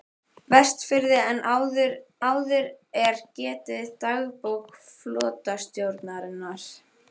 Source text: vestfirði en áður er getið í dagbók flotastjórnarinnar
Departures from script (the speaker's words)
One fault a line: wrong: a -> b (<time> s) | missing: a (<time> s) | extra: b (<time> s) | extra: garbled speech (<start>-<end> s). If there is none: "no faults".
extra: áður (2.3 s)